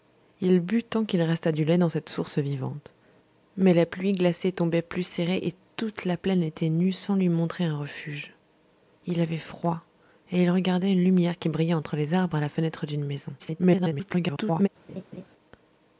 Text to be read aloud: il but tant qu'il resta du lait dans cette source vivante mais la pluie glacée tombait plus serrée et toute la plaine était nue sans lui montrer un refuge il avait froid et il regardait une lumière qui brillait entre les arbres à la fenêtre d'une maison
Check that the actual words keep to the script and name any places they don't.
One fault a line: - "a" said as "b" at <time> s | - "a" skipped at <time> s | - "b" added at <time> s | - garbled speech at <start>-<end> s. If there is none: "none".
- garbled speech at 13.4-14.7 s